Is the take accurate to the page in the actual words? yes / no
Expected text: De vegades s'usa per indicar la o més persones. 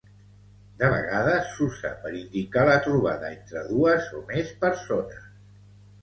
no